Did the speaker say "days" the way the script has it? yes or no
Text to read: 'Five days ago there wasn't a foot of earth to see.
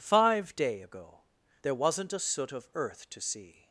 no